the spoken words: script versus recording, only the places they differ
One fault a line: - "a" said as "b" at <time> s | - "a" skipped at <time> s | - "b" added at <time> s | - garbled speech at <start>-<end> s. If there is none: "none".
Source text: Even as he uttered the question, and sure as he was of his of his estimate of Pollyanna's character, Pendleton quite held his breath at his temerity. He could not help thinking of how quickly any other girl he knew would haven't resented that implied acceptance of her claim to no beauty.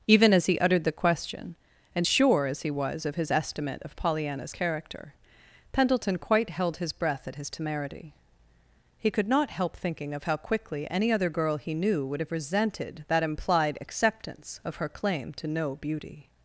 - "of his" skipped at 3.3 s
- "haven't" said as "have" at 12.2 s